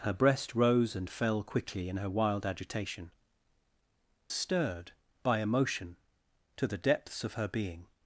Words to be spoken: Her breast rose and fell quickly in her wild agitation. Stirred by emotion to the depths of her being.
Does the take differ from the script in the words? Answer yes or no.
no